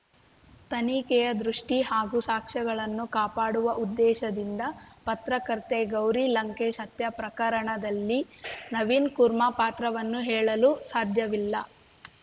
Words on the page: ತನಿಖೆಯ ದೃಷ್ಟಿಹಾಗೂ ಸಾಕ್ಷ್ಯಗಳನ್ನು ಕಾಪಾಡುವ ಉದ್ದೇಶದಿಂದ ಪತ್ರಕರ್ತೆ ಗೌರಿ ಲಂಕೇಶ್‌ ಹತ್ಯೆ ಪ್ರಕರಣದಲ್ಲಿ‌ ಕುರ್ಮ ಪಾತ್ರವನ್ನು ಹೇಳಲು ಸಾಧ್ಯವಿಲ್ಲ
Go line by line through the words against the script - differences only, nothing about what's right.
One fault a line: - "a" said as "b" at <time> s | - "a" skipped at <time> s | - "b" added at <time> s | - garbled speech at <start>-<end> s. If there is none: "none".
- "ನವೀನ್" added at 8.7 s